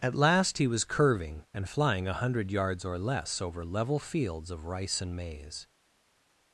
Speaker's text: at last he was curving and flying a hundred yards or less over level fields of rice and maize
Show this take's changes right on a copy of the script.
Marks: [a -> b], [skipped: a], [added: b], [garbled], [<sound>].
at last he was curving and flying a hundred yards or less over level fields of rice and maize